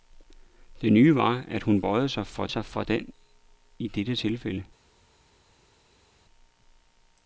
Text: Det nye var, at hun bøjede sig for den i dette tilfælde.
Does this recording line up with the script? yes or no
no